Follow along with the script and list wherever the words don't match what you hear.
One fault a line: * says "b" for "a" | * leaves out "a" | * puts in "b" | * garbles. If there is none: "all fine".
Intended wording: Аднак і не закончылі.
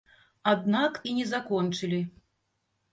all fine